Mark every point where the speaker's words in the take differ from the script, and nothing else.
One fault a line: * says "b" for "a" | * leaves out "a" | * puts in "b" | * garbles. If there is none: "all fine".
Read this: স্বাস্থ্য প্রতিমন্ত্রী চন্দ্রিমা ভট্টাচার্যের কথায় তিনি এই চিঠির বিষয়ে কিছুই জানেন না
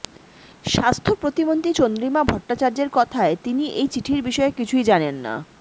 all fine